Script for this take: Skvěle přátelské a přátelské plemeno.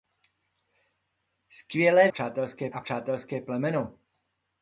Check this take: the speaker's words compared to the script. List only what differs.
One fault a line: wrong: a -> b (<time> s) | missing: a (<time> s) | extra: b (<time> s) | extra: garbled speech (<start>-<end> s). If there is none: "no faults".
no faults